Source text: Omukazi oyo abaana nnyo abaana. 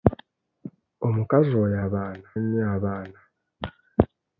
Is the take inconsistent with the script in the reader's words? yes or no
no